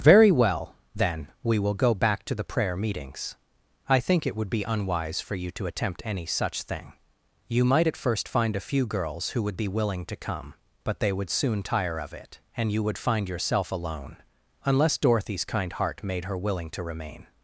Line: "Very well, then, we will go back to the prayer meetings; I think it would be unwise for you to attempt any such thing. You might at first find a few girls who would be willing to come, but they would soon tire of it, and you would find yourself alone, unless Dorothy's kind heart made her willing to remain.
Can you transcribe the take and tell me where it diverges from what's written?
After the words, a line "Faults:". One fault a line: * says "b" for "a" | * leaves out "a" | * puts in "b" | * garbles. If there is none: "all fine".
"Very well, then, we will go back to the prayer meetings; I think it would be unwise for you to attempt any such thing. You might at first find a few girls who would be willing to come, but they would soon tire of it, and you would find yourself alone, unless Dorothy's kind heart made her willing to remain.
Faults:
all fine